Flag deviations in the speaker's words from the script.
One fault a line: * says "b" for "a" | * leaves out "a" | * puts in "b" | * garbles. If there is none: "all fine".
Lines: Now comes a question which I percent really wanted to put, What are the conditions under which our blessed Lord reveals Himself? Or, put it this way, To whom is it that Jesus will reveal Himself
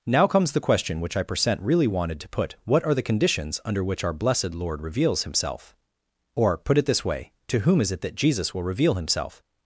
* says "the" for "a"